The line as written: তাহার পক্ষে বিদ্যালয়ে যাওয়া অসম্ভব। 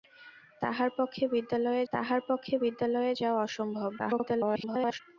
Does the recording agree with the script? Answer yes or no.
no